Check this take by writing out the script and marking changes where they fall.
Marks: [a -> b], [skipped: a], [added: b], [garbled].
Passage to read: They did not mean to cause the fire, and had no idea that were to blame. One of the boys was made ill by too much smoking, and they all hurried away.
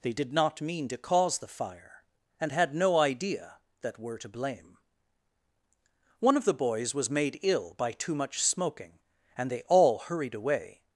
They did not mean to cause the fire, and had no idea that were to blame. One of the boys was made ill by too much smoking, and they all hurried away.